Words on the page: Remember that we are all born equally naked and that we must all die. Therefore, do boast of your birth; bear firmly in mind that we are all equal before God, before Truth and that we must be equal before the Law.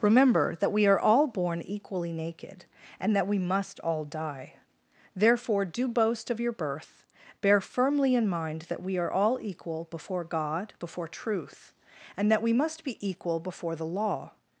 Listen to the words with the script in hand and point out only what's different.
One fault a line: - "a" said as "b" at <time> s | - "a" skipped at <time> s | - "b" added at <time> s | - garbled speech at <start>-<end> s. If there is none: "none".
none